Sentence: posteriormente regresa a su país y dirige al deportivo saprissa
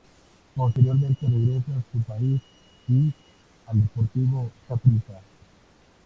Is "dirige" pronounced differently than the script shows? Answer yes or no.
yes